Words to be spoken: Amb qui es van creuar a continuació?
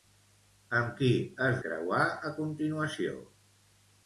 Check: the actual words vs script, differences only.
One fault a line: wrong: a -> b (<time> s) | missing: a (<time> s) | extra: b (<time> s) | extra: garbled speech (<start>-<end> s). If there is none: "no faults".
missing: van (1.6 s)